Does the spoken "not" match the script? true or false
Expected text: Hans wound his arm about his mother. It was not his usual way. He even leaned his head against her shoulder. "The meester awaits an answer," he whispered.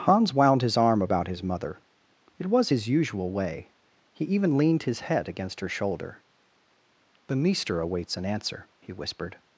false